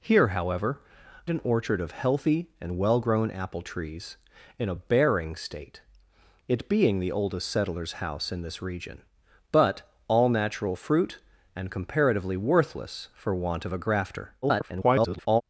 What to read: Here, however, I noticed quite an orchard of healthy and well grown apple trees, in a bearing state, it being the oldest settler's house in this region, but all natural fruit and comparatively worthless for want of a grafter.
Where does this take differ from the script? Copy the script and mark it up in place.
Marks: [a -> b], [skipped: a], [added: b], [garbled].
Here, however, [skipped: I noticed quite] an orchard of healthy and well grown apple trees, in a bearing state, it being the oldest settler's house in this region, but all natural fruit and comparatively worthless for want of a grafter. [garbled]